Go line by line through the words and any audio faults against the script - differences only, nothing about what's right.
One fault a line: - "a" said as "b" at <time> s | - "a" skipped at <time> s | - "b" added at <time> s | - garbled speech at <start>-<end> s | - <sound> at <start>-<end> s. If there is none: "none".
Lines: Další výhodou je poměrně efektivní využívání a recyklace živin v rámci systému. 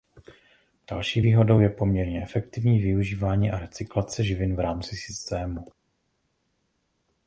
none